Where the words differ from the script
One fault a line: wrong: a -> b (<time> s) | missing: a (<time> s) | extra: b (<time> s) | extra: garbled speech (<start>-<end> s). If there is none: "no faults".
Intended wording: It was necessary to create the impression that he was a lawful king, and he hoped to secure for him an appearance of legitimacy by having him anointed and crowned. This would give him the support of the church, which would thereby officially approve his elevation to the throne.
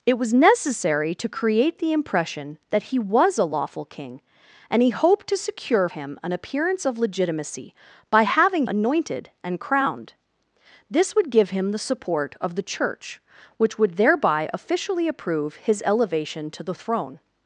missing: for (5.9 s)
missing: him (8.7 s)